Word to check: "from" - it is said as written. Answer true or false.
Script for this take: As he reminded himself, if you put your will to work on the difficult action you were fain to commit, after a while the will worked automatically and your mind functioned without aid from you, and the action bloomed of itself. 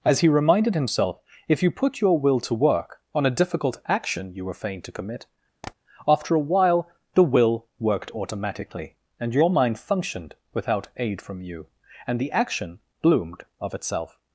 true